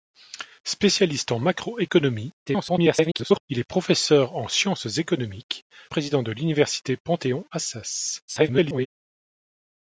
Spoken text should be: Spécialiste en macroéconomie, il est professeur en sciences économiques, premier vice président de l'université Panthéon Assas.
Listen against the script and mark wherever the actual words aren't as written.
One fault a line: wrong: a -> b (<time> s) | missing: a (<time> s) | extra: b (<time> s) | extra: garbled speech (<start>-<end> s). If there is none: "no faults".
extra: garbled speech (2.5-3.4 s)
missing: premier vice (5.6 s)
extra: garbled speech (8.3-8.9 s)